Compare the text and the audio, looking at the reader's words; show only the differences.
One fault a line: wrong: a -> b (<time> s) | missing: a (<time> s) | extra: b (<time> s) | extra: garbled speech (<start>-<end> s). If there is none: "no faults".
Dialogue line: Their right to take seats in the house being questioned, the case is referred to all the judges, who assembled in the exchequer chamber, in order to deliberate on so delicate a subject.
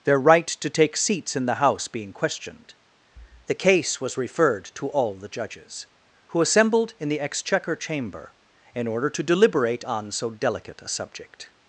wrong: is -> was (4.0 s)